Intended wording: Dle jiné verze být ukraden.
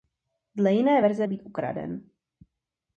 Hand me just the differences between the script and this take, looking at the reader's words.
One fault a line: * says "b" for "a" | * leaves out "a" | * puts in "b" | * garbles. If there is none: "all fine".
all fine